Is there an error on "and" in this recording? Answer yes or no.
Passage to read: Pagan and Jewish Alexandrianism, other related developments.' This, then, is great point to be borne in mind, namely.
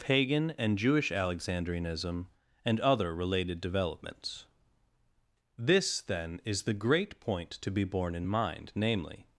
no